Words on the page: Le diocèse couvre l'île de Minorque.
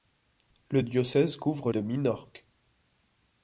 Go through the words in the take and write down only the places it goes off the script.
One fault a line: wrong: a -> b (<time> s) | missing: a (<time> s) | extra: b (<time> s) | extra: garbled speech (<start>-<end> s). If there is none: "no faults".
missing: l'île (1.7 s)